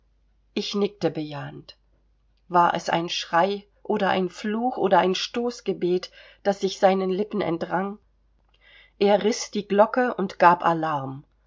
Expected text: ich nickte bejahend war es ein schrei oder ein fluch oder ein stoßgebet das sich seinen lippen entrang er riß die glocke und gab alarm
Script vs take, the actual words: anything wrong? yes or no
no